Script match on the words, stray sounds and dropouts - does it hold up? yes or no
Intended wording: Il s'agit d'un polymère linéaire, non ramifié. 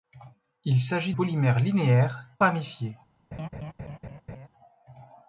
no